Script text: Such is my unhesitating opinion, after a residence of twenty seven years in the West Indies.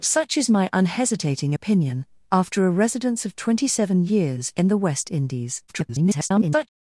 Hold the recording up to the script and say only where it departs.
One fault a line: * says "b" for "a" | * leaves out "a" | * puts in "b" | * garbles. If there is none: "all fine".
* garbles